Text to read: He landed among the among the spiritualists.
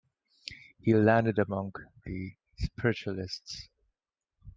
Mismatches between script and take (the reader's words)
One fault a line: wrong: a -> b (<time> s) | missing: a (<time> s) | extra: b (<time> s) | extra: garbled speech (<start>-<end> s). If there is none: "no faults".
missing: among the (2.3 s)